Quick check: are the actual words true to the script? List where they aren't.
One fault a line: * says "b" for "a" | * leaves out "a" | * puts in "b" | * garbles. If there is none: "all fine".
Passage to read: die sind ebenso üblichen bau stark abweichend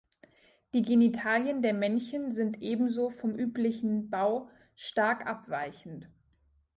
* puts in "genitalien der männchen"
* puts in "vom"